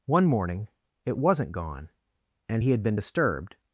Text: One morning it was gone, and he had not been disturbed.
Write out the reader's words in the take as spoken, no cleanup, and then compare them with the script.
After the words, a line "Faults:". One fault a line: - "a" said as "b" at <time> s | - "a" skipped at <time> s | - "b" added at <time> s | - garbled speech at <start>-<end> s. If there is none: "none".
One morning it wasn't gone, and he had been disturbed.
Faults:
- "was" said as "wasn't" at 1.2 s
- "not" skipped at 2.8 s